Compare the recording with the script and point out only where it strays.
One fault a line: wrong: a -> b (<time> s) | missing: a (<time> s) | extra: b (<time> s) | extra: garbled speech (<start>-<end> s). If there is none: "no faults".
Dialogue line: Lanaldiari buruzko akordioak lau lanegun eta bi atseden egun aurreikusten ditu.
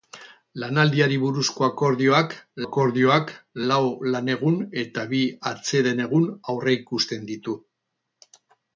extra: akordioak (2.6 s)